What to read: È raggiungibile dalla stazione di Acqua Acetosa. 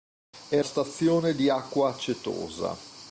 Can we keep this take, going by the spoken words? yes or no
no